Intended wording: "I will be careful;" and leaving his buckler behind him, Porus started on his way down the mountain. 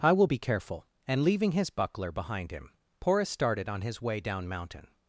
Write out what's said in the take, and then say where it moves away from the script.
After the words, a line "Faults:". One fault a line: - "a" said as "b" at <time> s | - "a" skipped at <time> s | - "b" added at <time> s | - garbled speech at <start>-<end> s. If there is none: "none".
"I will be careful;" and leaving his buckler behind him, Porus started on his way down mountain.
Faults:
- "the" skipped at 4.5 s